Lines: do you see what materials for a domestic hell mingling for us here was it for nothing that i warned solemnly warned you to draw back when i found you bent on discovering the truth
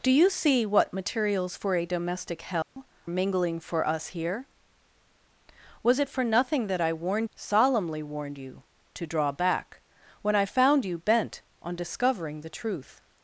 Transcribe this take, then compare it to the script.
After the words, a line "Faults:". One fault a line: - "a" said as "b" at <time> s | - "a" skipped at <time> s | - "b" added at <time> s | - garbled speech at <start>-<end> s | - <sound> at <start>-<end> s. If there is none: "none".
do you see what materials for a domestic hell mingling for us here was it for nothing that i warned solemnly warned you to draw back when i found you bent on discovering the truth
Faults:
- dropout at 2.6-2.8 s